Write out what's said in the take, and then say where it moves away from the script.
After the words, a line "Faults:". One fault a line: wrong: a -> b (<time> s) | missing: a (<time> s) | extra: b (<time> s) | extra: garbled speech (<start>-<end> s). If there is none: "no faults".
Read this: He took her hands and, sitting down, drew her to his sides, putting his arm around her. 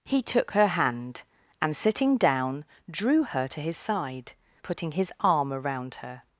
He took her hand and, sitting down, drew her to his side, putting his arm around her.
Faults:
wrong: hands -> hand (0.7 s)
wrong: sides -> side (3.8 s)